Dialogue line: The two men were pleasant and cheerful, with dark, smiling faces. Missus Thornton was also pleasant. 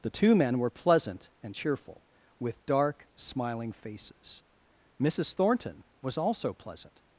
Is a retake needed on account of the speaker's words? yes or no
no